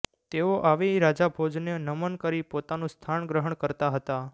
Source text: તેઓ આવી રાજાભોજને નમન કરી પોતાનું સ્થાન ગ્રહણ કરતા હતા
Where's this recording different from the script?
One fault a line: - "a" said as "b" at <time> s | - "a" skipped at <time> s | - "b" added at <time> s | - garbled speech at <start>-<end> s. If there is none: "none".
none